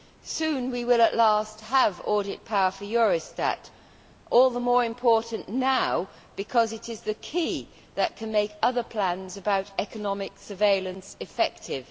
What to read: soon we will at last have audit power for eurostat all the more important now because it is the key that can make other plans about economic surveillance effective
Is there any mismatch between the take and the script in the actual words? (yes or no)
no